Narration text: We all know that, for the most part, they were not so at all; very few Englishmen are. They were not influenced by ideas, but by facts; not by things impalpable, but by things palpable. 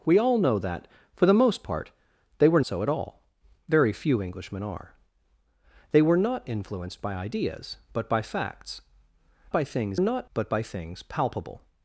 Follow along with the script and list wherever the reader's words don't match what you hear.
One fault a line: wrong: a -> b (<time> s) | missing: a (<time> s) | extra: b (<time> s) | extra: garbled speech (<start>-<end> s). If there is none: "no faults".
missing: not (2.6 s)
missing: not (8.8 s)
wrong: impalpable -> not (10.0 s)